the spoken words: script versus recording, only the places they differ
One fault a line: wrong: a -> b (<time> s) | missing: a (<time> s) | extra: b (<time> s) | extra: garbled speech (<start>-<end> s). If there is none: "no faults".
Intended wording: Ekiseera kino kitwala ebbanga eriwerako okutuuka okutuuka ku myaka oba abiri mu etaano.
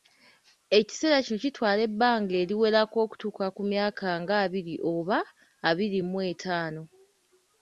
missing: okutuuka (3.5 s)
extra: nga abiri (4.2 s)